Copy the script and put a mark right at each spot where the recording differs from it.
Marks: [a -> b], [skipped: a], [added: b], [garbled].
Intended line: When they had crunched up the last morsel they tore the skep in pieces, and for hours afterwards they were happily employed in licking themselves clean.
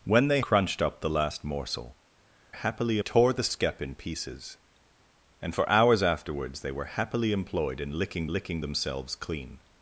When they [skipped: had] crunched up the last morsel [they -> happily] tore the skep in pieces, and for hours afterwards they were happily employed in licking [added: licking] themselves clean.